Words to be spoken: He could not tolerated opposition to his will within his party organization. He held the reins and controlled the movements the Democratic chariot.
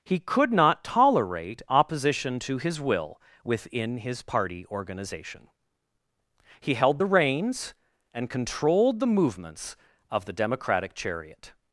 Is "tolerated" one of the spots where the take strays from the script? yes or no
yes